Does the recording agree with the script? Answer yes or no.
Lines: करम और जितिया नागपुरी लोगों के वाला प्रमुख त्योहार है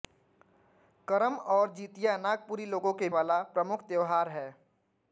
yes